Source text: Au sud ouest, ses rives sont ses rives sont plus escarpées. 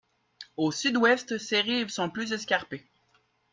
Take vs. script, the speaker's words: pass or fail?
fail